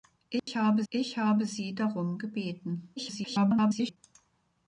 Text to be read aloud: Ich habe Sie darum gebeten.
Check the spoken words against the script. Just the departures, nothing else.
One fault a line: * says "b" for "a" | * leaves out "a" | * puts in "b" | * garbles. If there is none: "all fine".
* puts in "ich habe"
* garbles